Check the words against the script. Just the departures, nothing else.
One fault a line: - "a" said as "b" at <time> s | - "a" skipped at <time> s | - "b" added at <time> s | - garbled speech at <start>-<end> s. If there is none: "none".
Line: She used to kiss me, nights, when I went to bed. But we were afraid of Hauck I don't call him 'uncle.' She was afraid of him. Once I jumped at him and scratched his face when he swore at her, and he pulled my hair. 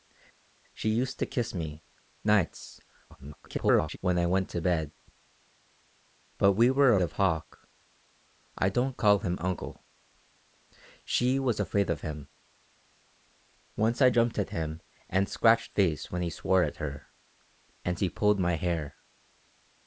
- garbled speech at 3.1-4.0 s
- "afraid" skipped at 7.0 s
- "his" skipped at 15.7 s